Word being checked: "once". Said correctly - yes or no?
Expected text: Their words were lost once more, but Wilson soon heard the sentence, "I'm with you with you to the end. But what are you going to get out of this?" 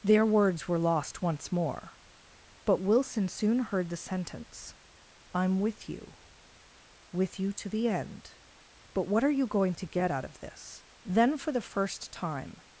yes